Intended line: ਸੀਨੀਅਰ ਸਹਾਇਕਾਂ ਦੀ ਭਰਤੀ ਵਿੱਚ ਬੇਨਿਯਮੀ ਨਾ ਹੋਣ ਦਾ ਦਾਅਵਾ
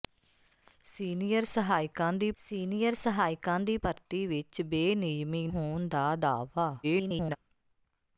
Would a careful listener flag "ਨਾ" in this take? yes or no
yes